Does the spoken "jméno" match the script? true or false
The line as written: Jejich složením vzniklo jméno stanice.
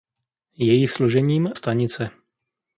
false